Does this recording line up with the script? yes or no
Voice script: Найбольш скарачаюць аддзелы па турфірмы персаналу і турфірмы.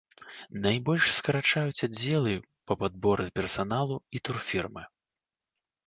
no